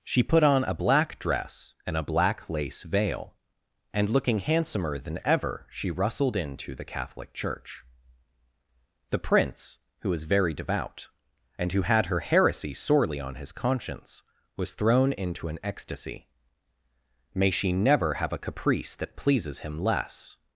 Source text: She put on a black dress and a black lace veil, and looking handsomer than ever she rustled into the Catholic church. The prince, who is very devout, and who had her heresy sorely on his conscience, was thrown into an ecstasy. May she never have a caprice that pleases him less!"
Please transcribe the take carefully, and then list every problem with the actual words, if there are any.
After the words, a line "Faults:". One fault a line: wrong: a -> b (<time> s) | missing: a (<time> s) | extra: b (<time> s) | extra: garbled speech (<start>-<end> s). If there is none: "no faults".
She put on a black dress and a black lace veil, and looking handsomer than ever she rustled into the Catholic church. The prince, who was very devout, and who had her heresy sorely on his conscience, was thrown into an ecstasy. May she never have a caprice that pleases him less!"
Faults:
wrong: is -> was (10.1 s)